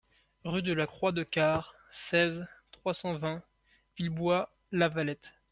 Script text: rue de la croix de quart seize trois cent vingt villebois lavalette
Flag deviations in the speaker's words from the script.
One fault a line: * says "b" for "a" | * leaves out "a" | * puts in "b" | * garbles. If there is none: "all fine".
all fine